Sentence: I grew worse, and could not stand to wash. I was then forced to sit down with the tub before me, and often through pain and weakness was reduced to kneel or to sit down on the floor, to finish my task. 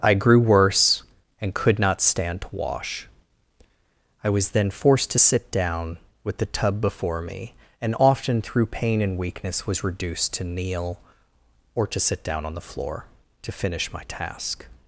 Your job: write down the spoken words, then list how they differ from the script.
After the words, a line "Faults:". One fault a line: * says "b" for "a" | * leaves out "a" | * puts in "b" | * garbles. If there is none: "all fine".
I grew worse, and could not stand to wash. I was then forced to sit down with the tub before me, and often through pain and weakness was reduced to kneel or to sit down on the floor, to finish my task.
Faults:
all fine